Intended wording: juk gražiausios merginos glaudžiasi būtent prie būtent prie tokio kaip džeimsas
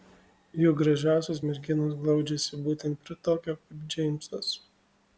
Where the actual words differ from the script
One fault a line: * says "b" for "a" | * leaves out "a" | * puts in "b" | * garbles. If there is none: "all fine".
* leaves out "būtent prie"